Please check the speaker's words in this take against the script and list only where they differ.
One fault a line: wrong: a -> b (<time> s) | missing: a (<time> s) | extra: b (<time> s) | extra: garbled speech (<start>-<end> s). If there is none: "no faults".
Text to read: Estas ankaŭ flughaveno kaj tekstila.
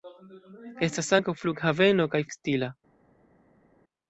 no faults